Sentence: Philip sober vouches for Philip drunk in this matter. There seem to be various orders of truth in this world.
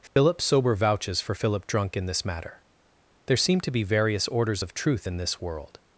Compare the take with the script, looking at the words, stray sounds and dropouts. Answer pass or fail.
fail